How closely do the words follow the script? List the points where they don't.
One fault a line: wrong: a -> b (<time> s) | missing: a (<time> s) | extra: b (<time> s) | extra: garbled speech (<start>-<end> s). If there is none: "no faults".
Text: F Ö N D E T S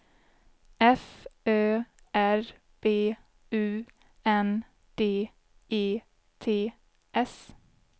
extra: R B U (2.1 s)